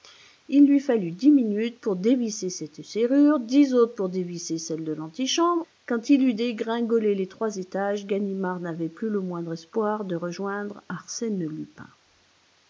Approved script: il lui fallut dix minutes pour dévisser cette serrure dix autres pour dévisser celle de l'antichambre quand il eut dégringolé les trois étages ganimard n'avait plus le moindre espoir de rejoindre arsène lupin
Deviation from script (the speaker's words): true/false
false